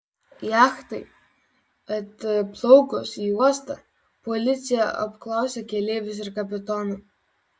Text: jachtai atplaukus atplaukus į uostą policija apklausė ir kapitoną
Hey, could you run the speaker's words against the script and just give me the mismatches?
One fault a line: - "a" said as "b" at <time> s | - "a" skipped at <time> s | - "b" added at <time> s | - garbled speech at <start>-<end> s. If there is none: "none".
- "atplaukus" skipped at 3.1 s
- "keleivius" added at 5.7 s